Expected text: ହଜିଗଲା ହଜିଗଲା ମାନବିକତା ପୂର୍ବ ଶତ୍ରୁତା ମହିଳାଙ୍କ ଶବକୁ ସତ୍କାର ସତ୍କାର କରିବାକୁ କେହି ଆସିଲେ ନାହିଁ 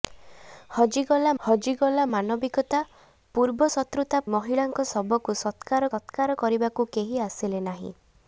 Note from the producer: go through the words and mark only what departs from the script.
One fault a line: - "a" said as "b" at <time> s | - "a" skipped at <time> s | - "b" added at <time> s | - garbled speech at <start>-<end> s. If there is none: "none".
none